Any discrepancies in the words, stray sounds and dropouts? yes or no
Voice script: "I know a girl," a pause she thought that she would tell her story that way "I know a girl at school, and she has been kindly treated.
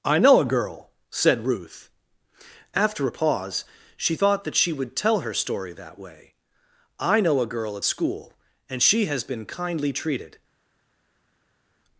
yes